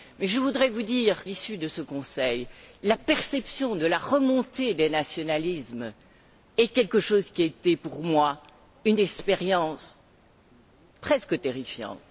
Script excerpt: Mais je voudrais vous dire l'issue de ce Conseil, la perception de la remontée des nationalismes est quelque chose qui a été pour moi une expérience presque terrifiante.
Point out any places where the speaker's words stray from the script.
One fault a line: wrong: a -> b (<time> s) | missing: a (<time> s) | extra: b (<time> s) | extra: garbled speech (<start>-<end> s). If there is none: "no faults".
no faults